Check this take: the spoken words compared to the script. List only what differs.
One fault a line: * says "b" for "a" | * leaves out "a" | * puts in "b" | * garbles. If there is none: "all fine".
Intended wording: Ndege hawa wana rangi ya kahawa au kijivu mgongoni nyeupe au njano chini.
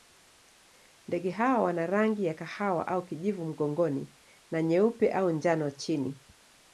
* puts in "na"